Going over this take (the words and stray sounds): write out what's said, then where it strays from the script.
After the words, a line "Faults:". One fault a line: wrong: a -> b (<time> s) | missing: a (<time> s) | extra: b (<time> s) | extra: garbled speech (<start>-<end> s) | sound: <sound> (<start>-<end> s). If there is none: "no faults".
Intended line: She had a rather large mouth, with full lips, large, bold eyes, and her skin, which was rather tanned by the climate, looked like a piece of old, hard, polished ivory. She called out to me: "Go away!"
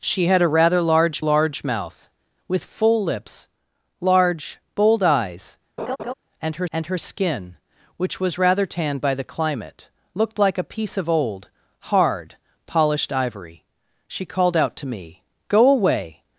She had a rather large large mouth, with full lips, large, bold eyes, and her and her skin, which was rather tanned by the climate, looked like a piece of old, hard, polished ivory. She called out to me: "Go away!"
Faults:
extra: large (1.2 s)
sound: laugh (5.8-6.1 s)
extra: and her (6.7 s)